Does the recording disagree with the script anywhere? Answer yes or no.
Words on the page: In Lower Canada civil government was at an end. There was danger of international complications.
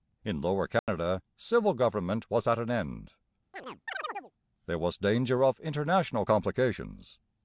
no